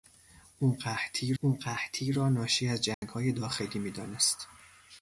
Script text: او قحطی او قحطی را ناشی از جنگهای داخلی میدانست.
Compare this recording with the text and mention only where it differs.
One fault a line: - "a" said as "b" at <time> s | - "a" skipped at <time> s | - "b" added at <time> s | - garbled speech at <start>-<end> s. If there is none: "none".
none